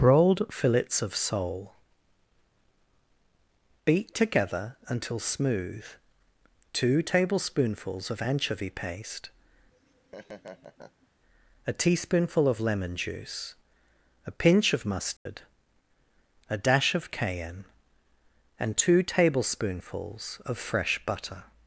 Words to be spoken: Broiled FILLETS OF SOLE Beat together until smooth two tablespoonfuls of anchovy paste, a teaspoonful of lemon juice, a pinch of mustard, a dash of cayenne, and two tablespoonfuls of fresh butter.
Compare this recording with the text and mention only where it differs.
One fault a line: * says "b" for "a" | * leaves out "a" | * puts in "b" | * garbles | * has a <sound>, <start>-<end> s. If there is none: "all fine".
* has a laugh, 9.7-11.1 s
* has a dropout, 15.2-15.3 s